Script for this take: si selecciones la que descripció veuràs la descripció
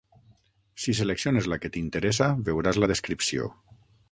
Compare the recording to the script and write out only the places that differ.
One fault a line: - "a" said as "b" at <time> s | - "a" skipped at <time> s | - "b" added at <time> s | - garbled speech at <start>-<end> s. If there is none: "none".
- "descripció" said as "t'interessa" at 1.8 s